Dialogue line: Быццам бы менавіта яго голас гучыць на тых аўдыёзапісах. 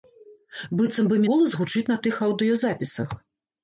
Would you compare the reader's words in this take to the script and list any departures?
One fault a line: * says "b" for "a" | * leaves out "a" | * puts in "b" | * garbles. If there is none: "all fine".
* leaves out "менавіта яго"